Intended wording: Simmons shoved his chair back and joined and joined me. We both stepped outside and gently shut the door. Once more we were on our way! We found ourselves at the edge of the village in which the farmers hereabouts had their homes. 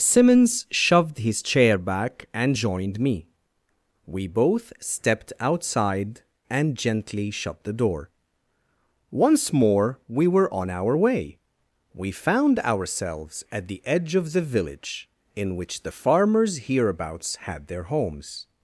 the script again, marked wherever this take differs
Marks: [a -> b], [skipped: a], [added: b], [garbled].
Simmons shoved his chair back and joined [skipped: and joined] me. We both stepped outside and gently shut the door. Once more we were on our way! We found ourselves at the edge of the village in which the farmers hereabouts had their homes.